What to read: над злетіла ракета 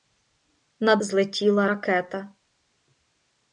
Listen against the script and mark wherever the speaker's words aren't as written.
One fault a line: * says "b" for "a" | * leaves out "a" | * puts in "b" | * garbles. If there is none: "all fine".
all fine